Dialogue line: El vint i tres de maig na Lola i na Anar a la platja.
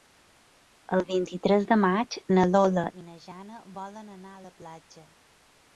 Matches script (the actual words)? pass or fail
fail